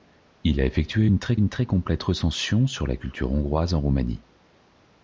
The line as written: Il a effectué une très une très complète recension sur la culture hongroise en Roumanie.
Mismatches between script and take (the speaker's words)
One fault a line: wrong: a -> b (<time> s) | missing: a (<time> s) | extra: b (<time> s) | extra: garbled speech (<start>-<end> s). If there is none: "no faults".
no faults